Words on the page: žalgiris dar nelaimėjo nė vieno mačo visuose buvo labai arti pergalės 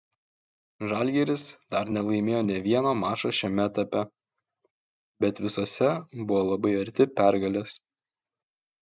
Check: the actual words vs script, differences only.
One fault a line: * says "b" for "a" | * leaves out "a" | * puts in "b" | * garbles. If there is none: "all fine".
* puts in "šiame etape bet"